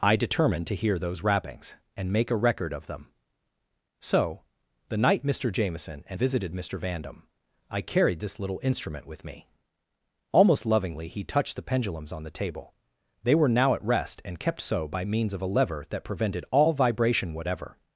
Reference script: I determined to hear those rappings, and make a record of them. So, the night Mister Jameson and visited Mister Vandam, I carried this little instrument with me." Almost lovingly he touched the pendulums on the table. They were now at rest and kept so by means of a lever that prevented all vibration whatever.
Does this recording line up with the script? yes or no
yes